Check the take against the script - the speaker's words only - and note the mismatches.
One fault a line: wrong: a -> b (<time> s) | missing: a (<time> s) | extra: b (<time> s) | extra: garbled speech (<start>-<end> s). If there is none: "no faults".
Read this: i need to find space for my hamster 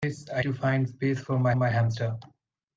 missing: need (0.5 s)
extra: my (1.5 s)